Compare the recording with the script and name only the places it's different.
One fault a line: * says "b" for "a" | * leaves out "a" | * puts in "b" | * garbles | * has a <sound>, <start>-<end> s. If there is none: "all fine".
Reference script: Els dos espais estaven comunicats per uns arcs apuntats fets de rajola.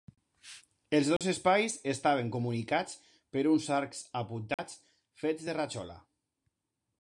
* has a dropout, 1.2-1.2 s
* has a dropout, 4.5-4.6 s